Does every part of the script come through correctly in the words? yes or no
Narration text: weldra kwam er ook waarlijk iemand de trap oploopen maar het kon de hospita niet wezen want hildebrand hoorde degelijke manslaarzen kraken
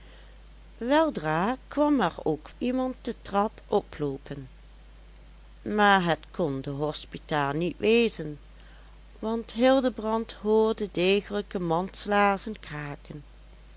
no